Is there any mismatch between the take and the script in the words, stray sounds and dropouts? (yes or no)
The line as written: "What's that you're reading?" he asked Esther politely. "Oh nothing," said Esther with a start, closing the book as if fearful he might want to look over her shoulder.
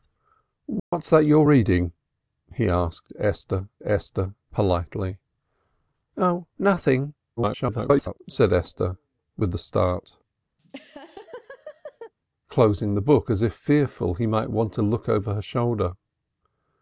yes